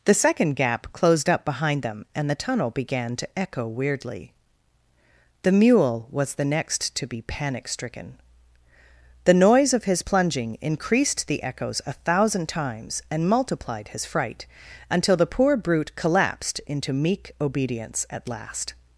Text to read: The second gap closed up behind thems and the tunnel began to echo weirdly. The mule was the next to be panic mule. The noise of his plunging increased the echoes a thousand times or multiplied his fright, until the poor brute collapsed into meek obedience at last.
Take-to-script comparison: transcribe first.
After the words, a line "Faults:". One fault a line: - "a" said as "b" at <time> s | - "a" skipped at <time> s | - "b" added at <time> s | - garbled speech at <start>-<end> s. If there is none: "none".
The second gap closed up behind them and the tunnel began to echo weirdly. The mule was the next to be panic stricken. The noise of his plunging increased the echoes a thousand times and multiplied his fright, until the poor brute collapsed into meek obedience at last.
Faults:
- "thems" said as "them" at 1.8 s
- "mule" said as "stricken" at 7.7 s
- "or" said as "and" at 13.1 s